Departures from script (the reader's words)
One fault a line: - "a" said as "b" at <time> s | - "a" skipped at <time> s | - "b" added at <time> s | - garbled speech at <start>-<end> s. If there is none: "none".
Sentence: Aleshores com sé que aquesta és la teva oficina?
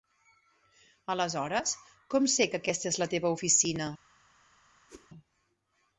none